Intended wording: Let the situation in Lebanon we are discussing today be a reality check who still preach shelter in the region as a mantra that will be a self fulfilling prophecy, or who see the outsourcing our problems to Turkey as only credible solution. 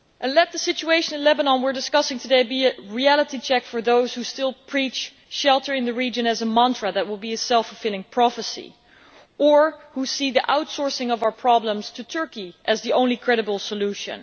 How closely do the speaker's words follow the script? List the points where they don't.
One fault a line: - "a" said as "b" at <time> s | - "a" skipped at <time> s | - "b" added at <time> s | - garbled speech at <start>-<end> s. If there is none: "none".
- "for those" added at 3.6 s
- "of" added at 11.1 s
- "the" added at 12.8 s